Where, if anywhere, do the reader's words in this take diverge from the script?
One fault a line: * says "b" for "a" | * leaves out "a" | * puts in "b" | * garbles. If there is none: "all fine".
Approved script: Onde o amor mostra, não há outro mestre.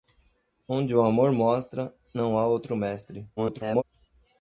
* garbles